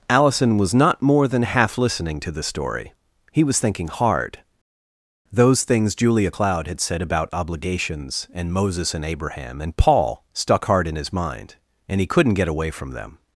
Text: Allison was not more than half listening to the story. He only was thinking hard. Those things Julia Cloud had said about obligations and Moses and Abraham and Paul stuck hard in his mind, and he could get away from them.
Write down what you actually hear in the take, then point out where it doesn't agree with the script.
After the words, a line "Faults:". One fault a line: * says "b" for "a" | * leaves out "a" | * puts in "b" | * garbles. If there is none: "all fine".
Allison was not more than half listening to the story. He was thinking hard. Those things Julia Cloud had said about obligations and Moses and Abraham and Paul stuck hard in his mind, and he couldn't get away from them.
Faults:
* leaves out "only"
* says "couldn't" for "could"